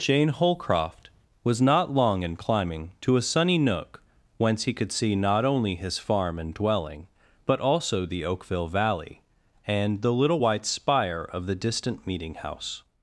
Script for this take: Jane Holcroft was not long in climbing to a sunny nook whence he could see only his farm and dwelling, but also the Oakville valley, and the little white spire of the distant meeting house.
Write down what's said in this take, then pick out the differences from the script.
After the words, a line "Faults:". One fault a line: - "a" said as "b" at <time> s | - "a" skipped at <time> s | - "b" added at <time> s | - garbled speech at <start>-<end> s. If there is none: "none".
Jane Holcroft was not long in climbing to a sunny nook whence he could see not only his farm and dwelling, but also the Oakville valley, and the little white spire of the distant meeting house.
Faults:
- "not" added at 5.2 s